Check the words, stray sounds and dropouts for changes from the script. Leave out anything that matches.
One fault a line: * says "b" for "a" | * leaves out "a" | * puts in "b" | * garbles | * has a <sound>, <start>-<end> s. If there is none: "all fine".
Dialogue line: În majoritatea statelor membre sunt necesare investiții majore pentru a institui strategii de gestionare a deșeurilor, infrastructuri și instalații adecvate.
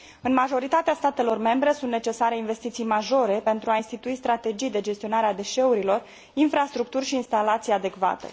all fine